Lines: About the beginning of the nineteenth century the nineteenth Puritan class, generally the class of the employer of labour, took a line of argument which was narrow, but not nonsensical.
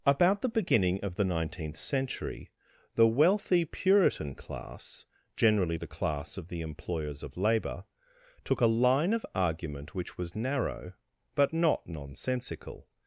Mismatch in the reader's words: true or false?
true